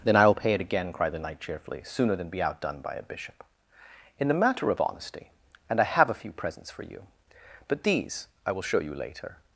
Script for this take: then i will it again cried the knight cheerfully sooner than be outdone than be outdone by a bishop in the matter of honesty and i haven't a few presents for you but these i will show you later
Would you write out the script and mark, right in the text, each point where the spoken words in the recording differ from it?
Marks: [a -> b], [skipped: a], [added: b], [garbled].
then i will [added: pay] it again cried the knight cheerfully sooner than be outdone [skipped: than be outdone] by a bishop in the matter of honesty and i [haven't -> have] a few presents for you but these i will show you later